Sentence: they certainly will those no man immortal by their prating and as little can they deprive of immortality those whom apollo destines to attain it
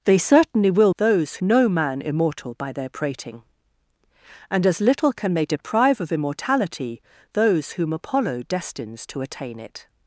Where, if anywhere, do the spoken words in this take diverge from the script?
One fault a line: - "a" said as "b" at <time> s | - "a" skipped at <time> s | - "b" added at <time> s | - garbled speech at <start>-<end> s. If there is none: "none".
none